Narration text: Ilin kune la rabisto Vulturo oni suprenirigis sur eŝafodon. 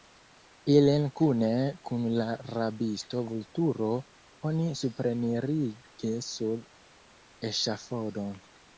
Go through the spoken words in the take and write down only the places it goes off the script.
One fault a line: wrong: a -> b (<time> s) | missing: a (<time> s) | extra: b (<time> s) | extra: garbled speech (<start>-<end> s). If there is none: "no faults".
extra: kun (1.9 s)